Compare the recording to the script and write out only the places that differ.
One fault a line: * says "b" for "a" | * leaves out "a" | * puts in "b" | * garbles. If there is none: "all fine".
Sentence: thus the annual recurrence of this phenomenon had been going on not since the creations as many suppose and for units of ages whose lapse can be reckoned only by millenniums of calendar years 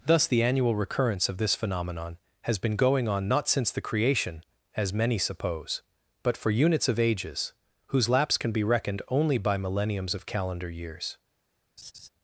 * says "has" for "had"
* says "creation" for "creations"
* says "but" for "and"